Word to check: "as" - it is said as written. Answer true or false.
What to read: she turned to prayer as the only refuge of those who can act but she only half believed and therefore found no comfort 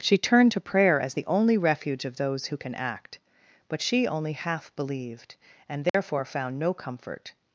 true